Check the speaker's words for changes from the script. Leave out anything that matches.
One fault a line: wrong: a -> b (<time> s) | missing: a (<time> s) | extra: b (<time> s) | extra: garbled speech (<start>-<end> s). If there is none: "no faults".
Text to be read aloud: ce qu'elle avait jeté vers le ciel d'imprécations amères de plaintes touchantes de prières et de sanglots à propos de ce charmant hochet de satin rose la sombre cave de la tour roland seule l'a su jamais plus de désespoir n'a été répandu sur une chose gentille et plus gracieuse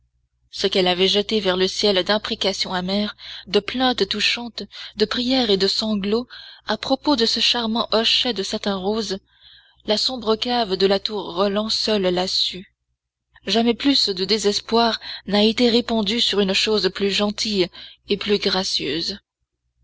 extra: plus (16.9 s)